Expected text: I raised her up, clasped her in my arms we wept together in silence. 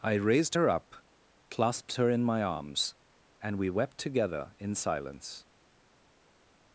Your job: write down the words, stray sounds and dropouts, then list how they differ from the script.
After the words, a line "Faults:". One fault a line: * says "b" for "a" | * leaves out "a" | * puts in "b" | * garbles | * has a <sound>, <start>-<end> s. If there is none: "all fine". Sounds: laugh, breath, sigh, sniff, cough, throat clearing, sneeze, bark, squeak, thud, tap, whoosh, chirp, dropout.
I raised her up, clasped her in my arms and we wept together in silence.
Faults:
* puts in "and"